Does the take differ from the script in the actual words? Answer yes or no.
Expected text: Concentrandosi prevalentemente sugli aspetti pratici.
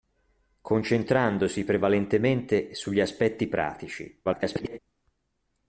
yes